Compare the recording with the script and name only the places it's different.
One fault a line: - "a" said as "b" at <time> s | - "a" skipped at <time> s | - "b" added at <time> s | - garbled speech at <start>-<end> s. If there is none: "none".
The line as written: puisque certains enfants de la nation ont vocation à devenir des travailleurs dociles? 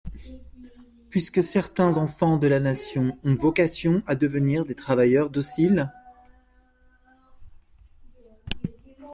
none